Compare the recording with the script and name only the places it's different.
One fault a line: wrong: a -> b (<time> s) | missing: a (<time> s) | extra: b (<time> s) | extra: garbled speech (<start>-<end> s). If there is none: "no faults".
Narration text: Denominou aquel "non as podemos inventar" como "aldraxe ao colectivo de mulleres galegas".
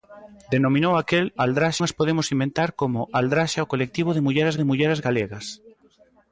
wrong: non -> aldraxe (1.4 s)
extra: de mulleres (4.6 s)